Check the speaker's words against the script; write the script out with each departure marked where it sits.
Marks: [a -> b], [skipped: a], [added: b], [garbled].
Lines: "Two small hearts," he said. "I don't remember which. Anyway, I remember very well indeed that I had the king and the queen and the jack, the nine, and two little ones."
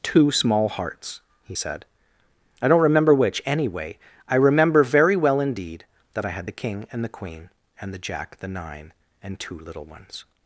"Two small hearts," he said. "I don't remember which. Anyway, I remember very well indeed that I had the king and the queen and the jack, the nine, and two little ones."